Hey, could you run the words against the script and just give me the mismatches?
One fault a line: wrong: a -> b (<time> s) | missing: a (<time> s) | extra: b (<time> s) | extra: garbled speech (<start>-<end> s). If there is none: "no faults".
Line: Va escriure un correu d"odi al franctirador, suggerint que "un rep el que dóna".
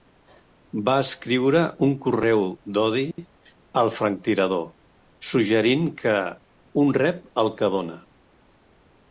no faults